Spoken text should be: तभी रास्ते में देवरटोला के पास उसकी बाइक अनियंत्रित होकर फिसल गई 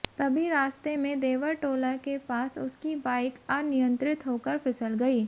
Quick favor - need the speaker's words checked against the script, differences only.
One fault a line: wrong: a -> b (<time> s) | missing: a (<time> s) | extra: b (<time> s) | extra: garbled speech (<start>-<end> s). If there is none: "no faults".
no faults